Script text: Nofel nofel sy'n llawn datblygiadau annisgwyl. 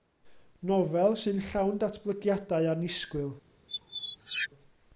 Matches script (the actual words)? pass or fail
fail